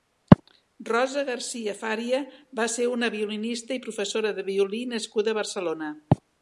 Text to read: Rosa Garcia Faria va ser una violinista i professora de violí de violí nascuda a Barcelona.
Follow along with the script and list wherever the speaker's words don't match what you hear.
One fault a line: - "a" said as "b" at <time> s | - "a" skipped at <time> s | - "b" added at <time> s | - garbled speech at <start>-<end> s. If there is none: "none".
- "de violí" skipped at 4.8 s